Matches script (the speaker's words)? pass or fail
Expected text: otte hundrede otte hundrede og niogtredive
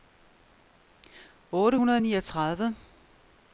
fail